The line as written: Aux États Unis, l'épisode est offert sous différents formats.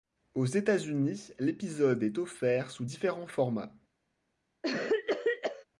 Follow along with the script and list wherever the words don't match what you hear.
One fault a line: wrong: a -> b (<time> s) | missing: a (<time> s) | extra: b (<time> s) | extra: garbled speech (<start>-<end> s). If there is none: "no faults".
no faults